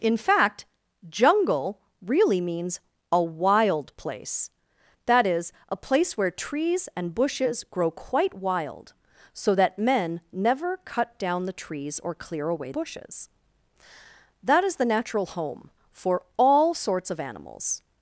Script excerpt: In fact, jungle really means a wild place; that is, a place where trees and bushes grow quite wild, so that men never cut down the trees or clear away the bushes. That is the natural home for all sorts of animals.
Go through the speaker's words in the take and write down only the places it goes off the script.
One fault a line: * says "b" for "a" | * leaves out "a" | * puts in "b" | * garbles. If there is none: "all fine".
* leaves out "the"